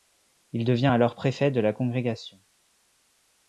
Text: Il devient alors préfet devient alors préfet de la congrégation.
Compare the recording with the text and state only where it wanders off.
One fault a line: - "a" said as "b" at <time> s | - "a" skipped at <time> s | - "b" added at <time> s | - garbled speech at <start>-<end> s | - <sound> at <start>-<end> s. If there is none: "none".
- "devient alors préfet" skipped at 1.5 s